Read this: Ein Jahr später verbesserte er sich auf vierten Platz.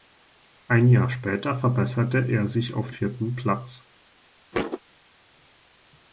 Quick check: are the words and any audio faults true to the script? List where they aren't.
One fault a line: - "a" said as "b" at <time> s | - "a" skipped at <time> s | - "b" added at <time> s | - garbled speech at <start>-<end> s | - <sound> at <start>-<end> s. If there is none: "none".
- thud at 4.5-4.8 s